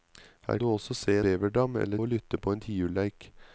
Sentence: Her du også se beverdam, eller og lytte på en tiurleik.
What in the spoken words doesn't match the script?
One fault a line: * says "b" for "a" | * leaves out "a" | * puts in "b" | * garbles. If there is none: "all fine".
all fine